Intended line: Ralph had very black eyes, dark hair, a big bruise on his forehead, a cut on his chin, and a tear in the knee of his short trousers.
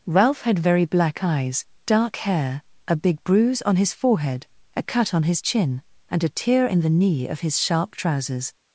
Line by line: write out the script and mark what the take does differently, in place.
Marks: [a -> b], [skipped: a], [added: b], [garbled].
Ralph had very black eyes, dark hair, a big bruise on his forehead, a cut on his chin, and a tear in the knee of his [short -> sharp] trousers.